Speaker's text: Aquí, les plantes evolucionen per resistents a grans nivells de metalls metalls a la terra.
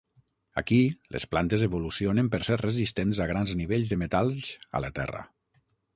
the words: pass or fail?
fail